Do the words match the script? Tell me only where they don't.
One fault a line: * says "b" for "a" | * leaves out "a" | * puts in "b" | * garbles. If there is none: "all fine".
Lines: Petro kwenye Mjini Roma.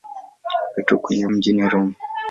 all fine